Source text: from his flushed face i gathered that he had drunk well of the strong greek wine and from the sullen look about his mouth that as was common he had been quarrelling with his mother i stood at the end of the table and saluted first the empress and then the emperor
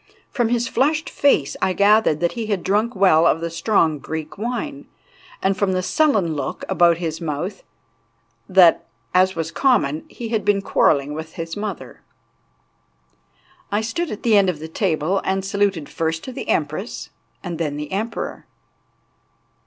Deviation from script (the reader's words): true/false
false